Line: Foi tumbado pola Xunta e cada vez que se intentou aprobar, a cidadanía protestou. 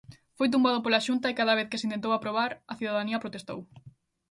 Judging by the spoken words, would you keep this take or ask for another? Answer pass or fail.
pass